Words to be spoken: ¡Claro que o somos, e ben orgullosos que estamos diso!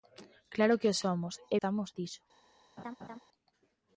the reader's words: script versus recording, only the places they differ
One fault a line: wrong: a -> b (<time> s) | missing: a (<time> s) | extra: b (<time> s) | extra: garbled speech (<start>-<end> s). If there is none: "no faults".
missing: ben orgullosos que (1.6 s)